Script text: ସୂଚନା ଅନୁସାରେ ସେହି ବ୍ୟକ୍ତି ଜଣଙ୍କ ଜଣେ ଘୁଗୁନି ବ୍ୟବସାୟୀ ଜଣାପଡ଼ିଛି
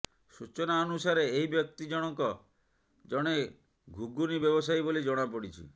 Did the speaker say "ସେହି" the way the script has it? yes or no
no